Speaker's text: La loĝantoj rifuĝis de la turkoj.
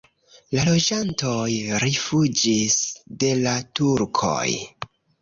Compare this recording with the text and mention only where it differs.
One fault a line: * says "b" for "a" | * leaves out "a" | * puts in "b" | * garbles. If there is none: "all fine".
all fine